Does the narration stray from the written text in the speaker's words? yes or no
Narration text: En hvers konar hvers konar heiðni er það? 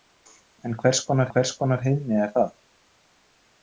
no